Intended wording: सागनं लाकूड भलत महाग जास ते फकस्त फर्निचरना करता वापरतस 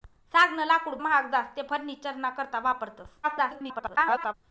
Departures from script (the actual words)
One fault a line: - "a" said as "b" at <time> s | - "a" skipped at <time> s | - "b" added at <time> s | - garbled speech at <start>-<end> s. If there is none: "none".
- "भलत" skipped at 0.9 s
- "फकस्त" skipped at 1.7 s
- garbled speech at 3.2-4.3 s